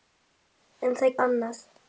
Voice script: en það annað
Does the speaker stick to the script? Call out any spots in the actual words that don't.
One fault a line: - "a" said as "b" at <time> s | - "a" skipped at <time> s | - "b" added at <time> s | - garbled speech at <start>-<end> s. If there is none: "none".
none